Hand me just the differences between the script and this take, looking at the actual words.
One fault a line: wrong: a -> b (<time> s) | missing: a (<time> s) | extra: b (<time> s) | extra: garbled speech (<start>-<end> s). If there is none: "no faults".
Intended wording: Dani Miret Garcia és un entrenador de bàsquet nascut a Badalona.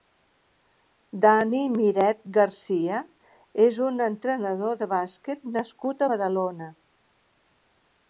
no faults